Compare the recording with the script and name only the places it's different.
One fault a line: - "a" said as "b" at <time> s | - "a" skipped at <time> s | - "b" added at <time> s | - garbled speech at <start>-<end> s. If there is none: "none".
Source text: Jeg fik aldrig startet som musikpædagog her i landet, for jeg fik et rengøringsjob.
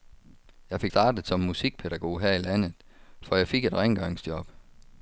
- "aldrig" skipped at 0.9 s